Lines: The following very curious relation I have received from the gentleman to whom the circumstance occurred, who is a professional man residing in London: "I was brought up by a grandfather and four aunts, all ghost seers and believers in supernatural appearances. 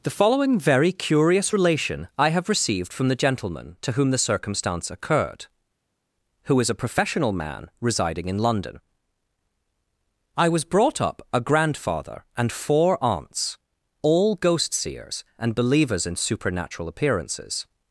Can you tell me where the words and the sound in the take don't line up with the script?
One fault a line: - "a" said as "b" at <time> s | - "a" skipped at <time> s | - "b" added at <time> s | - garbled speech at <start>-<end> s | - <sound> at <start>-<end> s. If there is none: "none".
- "by" skipped at 11.3 s